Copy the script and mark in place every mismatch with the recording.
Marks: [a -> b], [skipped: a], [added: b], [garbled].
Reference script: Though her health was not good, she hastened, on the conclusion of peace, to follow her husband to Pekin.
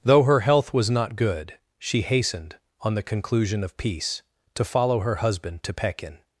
Though her health was not good, she hastened, on the conclusion of peace, to follow her husband to Pekin.